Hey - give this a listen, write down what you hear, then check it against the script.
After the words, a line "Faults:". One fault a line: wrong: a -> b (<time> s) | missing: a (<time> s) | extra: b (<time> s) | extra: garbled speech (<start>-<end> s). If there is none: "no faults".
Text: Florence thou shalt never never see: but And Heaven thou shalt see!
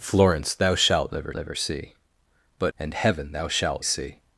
Florence thou shalt never never see: but And Heaven thou shalt see!
Faults:
no faults